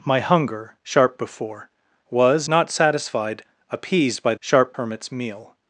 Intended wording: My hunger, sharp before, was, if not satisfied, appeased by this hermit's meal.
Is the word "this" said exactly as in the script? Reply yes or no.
no